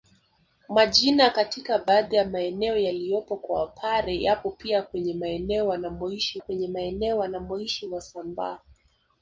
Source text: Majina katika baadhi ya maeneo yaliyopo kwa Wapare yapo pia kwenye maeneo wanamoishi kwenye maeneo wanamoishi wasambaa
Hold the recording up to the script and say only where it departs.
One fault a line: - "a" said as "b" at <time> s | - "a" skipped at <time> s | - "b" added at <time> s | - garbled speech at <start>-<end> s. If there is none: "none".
none